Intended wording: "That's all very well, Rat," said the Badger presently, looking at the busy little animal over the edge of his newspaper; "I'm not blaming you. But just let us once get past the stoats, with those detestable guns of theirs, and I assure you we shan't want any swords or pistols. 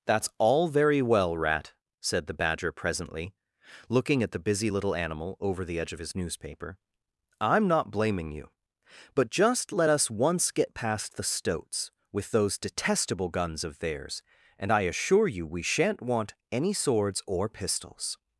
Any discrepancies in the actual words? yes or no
no